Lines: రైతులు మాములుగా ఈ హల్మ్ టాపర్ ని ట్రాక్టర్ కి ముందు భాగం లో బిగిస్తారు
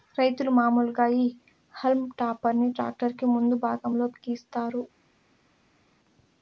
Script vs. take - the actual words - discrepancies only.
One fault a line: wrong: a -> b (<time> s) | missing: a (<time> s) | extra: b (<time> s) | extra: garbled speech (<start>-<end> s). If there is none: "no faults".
no faults